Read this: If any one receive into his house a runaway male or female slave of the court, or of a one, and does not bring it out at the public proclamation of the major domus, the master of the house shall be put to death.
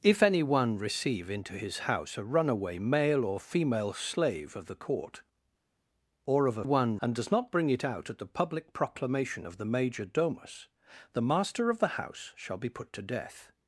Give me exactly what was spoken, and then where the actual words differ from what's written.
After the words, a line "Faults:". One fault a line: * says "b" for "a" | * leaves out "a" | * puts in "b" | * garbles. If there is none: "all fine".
If any one receive into his house a runaway male or female slave of the court, or of a one, and does not bring it out at the public proclamation of the major domus, the master of the house shall be put to death.
Faults:
all fine